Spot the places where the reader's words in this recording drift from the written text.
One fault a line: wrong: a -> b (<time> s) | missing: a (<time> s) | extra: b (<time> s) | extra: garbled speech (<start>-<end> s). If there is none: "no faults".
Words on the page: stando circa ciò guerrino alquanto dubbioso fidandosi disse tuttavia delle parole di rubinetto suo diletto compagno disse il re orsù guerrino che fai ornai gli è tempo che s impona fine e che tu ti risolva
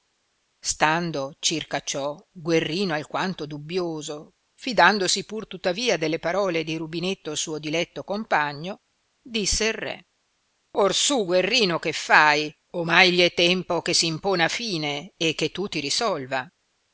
wrong: disse -> pur (5.2 s)